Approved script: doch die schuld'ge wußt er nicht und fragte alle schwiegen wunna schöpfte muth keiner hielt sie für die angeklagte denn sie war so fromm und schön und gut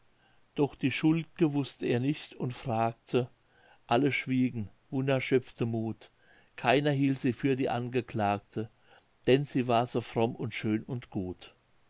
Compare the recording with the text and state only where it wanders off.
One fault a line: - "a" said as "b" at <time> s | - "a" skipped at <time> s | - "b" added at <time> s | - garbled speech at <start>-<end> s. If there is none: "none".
none